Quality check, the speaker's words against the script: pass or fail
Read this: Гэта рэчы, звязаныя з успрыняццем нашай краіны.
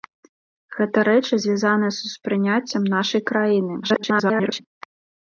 fail